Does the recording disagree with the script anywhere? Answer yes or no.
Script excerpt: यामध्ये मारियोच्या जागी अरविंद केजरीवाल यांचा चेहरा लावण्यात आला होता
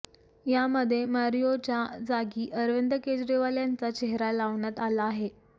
yes